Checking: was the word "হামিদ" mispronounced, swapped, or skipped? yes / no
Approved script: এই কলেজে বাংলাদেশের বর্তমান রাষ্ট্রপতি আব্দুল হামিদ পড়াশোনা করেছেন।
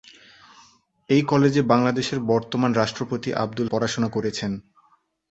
yes